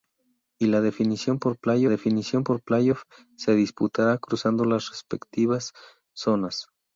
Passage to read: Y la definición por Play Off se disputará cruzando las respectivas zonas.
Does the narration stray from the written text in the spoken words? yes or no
yes